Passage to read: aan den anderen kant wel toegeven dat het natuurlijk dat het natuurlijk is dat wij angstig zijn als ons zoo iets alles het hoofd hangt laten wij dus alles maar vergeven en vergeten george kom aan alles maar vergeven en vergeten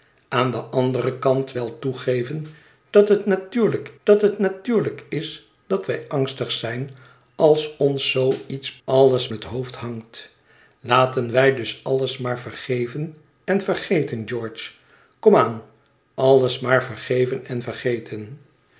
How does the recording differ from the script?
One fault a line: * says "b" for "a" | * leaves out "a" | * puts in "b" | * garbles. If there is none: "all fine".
all fine